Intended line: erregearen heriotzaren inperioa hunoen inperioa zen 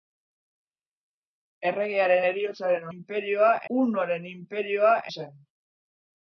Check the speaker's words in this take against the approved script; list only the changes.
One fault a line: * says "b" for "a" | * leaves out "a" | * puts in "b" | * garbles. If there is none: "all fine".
all fine